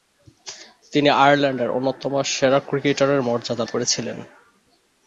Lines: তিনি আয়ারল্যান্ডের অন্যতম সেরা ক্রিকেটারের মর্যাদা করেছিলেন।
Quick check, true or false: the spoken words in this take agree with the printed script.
true